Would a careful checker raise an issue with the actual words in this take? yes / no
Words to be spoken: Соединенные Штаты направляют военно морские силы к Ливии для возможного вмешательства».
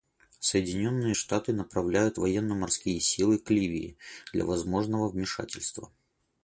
no